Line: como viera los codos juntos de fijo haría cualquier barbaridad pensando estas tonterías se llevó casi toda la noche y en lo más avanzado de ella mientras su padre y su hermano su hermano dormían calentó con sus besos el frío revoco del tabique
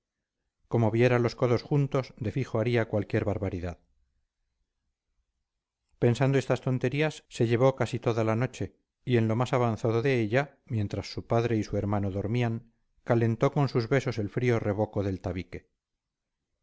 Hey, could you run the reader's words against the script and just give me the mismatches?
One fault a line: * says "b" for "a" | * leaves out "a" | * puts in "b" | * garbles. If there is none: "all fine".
* leaves out "su hermano"